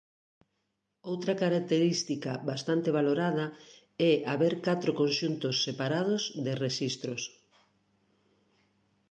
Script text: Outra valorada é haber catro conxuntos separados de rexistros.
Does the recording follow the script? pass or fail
fail